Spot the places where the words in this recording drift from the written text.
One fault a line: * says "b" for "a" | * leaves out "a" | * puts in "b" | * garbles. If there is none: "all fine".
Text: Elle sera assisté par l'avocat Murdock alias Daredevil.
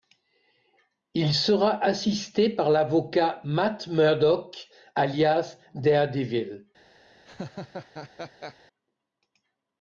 * says "Il" for "Elle"
* puts in "Matt"